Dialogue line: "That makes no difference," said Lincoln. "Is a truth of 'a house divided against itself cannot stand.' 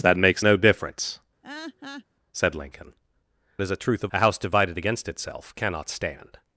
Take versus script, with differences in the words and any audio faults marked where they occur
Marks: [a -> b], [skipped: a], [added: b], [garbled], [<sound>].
"That makes no difference," [laugh] said Lincoln. "Is a truth of 'a house divided against itself cannot stand.'